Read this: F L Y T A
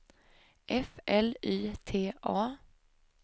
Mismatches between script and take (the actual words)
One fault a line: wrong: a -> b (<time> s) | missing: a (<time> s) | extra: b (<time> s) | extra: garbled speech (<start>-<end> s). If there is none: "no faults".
no faults